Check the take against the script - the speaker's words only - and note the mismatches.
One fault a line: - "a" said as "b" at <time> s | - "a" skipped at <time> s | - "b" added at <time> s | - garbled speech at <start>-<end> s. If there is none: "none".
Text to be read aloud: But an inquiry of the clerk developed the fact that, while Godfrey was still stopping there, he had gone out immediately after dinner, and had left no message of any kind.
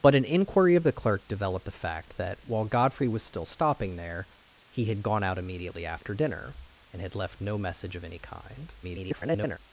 - garbled speech at 8.8-9.6 s